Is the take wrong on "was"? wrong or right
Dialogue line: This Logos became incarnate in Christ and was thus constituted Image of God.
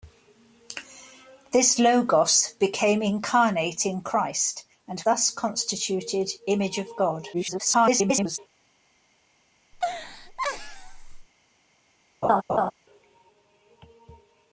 wrong